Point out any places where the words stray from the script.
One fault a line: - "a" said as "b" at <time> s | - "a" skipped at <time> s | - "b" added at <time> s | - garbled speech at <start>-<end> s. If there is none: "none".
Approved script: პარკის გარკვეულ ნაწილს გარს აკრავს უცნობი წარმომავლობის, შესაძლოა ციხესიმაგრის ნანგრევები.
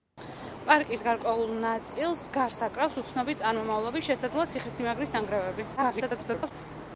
- garbled speech at 5.8-6.5 s